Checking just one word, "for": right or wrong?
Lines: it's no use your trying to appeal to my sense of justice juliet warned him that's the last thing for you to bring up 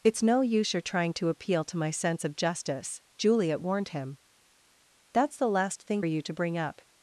wrong